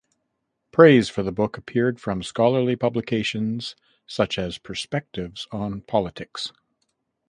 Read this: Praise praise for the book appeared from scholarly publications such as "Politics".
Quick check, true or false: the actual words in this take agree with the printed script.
false